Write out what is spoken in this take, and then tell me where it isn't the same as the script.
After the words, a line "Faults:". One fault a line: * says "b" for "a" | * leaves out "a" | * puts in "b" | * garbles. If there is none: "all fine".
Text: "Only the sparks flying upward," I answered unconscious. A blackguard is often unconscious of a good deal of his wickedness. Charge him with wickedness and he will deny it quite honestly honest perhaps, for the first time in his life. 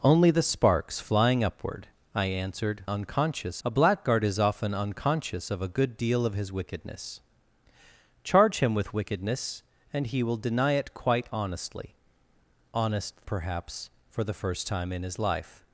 "Only the sparks flying upward," I answered unconscious. A blackguard is often unconscious of a good deal of his wickedness. Charge him with wickedness and he will deny it quite honestly honest perhaps, for the first time in his life.
Faults:
all fine